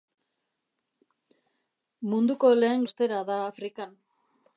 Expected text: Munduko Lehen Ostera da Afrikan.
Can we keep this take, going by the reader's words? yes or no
yes